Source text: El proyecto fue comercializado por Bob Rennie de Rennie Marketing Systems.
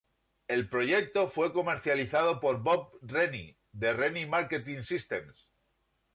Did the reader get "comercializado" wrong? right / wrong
right